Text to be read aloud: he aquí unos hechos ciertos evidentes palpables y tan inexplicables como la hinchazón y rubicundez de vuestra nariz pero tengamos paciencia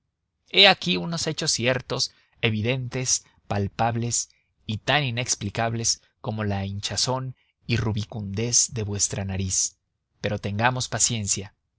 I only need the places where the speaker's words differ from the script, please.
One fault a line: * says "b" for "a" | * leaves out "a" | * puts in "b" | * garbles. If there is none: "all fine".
all fine